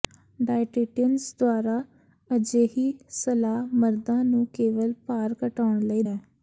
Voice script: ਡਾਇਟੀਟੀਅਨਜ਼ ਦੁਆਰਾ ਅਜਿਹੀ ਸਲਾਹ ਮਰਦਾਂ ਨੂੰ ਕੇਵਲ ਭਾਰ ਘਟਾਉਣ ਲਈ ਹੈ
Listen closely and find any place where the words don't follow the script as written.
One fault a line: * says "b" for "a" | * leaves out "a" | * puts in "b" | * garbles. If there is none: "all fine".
all fine